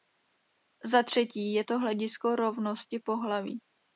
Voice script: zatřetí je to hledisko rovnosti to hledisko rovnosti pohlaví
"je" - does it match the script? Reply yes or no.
yes